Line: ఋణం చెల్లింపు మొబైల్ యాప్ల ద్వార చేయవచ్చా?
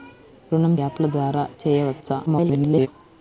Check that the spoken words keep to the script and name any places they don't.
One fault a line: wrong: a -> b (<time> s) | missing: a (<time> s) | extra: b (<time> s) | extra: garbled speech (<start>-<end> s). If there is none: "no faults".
missing: చెల్లింపు మొబైల్ (0.8 s)
extra: garbled speech (2.3-2.9 s)